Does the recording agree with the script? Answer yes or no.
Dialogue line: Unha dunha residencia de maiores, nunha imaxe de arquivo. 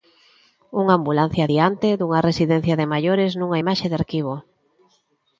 no